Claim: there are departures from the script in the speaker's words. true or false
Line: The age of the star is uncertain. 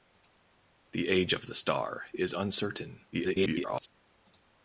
true